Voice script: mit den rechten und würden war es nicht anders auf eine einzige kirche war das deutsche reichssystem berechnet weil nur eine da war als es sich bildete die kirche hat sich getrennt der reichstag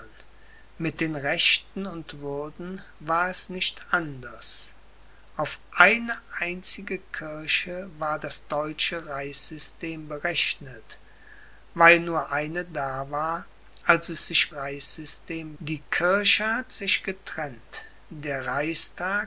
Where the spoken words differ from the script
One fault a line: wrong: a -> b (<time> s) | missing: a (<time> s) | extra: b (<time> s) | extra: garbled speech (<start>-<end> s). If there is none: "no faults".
wrong: bildete -> reichssystem (14.5 s)